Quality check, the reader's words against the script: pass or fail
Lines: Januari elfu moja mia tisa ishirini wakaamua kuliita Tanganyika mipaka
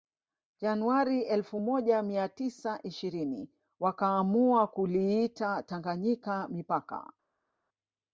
pass